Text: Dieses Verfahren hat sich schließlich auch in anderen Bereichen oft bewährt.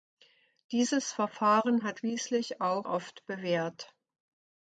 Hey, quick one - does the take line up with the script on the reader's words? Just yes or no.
no